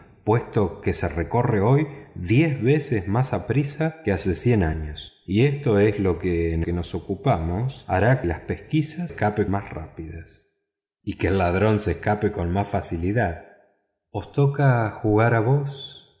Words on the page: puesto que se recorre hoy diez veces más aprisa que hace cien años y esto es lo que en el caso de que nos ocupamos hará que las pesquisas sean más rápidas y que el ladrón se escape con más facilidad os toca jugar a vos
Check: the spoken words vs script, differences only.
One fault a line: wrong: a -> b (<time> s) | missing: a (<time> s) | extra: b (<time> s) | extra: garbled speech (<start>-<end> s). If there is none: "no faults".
missing: el caso de (6.6 s)
missing: que (8.2 s)
wrong: sean -> escape (9.1 s)